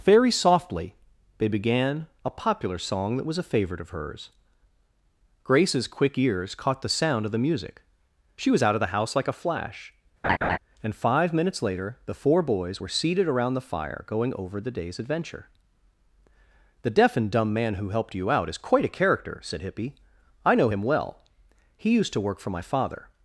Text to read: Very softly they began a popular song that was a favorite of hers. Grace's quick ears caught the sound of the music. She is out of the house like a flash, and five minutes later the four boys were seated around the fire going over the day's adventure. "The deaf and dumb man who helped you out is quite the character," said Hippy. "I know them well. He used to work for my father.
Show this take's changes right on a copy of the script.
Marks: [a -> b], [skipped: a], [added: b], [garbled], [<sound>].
Very softly they began a popular song that was a favorite of hers. Grace's quick ears caught the sound of the music. She [is -> was] out of the house like a flash, [laugh] and five minutes later the four boys were seated around the fire going over the day's adventure. "The deaf and dumb man who helped you out is quite [the -> a] character," said Hippy. "I know [them -> him] well. He used to work for my father.